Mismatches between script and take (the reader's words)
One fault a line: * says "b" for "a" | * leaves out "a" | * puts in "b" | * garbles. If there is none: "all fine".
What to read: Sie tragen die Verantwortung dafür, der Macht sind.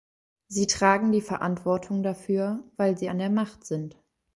* puts in "weil sie an"